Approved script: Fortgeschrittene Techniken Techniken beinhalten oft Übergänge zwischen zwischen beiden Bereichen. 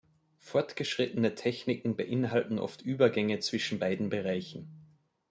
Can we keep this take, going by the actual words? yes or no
no